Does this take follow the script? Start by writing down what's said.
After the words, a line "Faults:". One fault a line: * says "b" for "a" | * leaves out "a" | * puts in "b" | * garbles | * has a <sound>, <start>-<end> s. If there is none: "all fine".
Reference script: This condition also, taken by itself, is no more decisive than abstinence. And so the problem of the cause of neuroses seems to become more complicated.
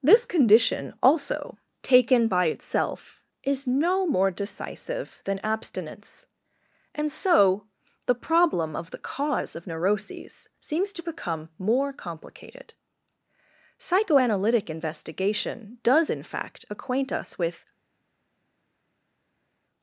This condition also, taken by itself, is no more decisive than abstinence. And so the problem of the cause of neuroses seems to become more complicated. Psychoanalytic investigation does, in fact, acquaint us with
Faults:
* puts in "Psychoanalytic investigation does in fact acquaint us with"